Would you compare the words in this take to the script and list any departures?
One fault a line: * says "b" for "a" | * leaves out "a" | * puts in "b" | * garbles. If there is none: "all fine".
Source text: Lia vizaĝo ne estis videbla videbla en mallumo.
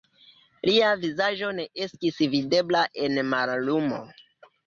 * leaves out "videbla"